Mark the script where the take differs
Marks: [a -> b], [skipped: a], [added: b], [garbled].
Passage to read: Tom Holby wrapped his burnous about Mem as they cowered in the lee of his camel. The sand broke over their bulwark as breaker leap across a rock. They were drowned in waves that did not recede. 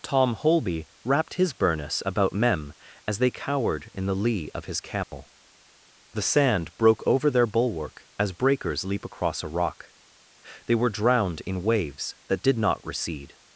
Tom Holby wrapped his burnous about Mem as they cowered in the lee of his camel. The sand broke over their bulwark as [breaker -> breakers] leap across a rock. They were drowned in waves that did not recede.